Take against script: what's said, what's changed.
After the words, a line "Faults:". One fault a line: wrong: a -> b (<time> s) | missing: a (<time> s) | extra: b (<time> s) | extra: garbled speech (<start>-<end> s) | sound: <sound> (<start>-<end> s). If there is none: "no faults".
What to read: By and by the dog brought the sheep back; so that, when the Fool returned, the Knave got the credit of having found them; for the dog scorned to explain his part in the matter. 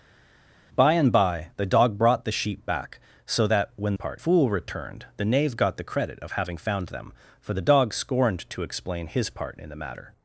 By and by the dog brought the sheep back; so that, when part Fool returned, the Knave got the credit of having found them; for the dog scorned to explain his part in the matter.
Faults:
wrong: the -> part (3.9 s)